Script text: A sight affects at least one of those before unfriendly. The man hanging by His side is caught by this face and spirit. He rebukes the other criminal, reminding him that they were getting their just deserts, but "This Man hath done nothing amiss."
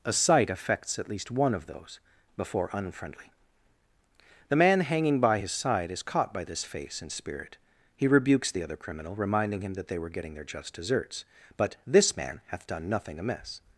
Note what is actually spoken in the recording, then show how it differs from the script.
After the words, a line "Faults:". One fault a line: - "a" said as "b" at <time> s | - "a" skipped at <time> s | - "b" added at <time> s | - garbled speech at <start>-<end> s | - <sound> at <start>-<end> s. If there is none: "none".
A sight affects at least one of those before unfriendly. The man hanging by His side is caught by this face and spirit. He rebukes the other criminal, reminding him that they were getting their just deserts, but "This Man hath done nothing amiss."
Faults:
none